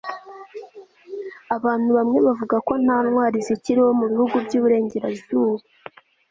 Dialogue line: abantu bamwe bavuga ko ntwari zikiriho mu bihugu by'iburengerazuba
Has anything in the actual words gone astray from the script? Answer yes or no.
yes